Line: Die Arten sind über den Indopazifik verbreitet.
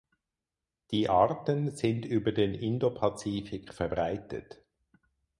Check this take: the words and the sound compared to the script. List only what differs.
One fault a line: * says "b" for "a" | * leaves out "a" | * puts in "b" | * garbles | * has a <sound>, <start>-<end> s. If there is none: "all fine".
all fine